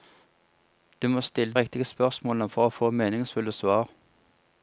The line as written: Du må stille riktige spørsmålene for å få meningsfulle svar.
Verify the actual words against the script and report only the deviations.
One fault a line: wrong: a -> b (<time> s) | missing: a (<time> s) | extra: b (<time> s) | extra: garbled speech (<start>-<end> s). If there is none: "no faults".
no faults